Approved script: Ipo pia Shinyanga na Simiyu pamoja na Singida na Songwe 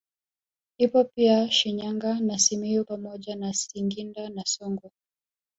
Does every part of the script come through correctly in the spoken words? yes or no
yes